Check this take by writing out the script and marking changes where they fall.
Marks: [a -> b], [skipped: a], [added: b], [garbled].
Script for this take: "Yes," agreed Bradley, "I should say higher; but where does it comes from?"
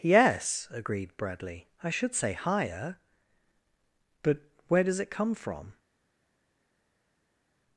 "Yes," agreed Bradley, "I should say higher; but where does it [comes -> come] from?"